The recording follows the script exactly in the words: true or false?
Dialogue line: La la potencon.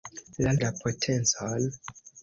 true